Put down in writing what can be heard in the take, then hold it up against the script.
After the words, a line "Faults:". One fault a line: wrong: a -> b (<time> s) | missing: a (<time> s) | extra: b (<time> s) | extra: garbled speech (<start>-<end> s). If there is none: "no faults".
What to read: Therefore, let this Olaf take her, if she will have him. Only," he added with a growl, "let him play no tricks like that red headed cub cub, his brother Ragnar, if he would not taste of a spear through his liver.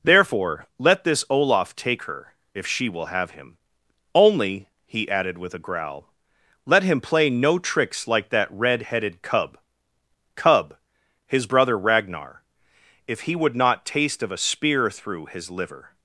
Therefore, let this Olaf take her, if she will have him. Only," he added with a growl, "let him play no tricks like that red headed cub cub, his brother Ragnar, if he would not taste of a spear through his liver.
Faults:
no faults